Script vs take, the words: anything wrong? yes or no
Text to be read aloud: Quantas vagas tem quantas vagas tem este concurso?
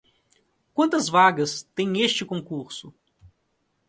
yes